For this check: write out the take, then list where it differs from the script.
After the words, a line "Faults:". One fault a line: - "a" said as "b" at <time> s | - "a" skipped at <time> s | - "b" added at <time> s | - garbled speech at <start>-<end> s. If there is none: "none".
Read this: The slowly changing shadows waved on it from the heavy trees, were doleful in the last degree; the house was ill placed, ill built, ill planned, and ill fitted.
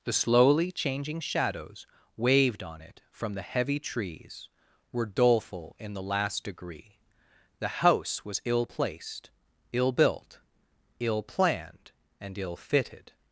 The slowly changing shadows waved on it from the heavy trees, were doleful in the last degree; the house was ill placed, ill built, ill planned, and ill fitted.
Faults:
none